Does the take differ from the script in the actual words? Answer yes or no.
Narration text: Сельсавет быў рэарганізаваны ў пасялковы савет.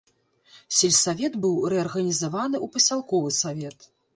no